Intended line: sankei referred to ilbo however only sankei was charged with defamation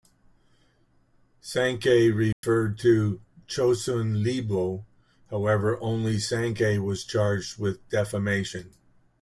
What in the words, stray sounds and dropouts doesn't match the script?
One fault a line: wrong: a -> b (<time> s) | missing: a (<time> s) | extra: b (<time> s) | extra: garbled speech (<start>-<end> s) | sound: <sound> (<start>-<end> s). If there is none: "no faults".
sound: dropout (2.3-2.4 s)
extra: chosun (3.5 s)